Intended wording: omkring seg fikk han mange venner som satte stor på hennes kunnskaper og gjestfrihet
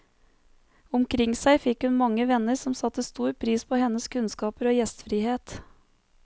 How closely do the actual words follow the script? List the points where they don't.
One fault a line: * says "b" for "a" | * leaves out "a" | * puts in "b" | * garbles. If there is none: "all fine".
* says "hun" for "han"
* puts in "pris"